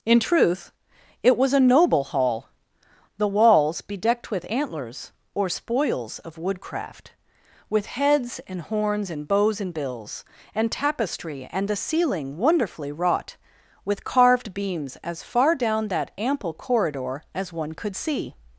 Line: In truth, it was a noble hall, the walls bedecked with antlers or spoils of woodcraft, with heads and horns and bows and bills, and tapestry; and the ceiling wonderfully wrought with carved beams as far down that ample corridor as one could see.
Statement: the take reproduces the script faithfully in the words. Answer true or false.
true